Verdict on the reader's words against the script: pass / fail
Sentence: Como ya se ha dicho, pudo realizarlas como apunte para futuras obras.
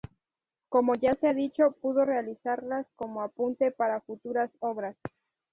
pass